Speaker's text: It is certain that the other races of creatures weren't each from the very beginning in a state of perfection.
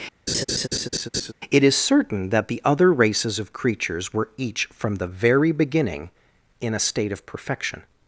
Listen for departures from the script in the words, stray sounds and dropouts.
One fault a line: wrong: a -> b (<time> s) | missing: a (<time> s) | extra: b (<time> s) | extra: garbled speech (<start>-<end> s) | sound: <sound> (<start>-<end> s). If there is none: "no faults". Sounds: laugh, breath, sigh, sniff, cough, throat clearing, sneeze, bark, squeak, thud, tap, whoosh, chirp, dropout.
sound: laugh (0.3-1.3 s)
wrong: weren't -> were (4.1 s)